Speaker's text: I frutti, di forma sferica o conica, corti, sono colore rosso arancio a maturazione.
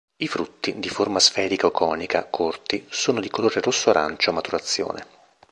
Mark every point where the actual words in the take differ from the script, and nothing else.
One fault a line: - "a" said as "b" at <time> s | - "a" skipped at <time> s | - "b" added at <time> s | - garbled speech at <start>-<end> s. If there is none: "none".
- "di" added at 3.2 s